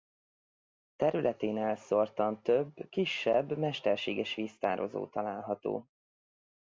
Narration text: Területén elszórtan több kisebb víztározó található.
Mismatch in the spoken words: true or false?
true